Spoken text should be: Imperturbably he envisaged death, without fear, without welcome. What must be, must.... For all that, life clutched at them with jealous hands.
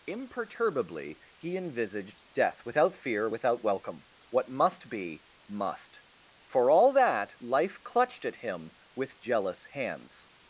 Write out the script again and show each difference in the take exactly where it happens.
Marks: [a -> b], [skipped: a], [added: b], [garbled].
Imperturbably he envisaged death, without fear, without welcome. What must be, must.... For all that, life clutched at [them -> him] with jealous hands.